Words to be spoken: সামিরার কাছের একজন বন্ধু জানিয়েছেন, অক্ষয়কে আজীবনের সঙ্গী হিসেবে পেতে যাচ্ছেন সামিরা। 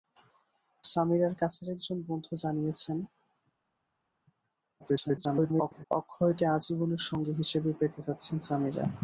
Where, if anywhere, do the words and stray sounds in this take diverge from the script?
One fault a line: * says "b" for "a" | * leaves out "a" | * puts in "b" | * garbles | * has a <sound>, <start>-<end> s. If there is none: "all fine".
* garbles